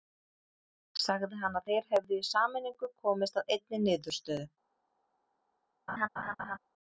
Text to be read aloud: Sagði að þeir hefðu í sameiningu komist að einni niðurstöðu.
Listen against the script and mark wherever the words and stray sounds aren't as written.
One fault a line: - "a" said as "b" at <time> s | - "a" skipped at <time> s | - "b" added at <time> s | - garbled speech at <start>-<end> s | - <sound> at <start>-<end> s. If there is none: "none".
- "hann" added at 1.4 s
- laugh at 5.9-6.6 s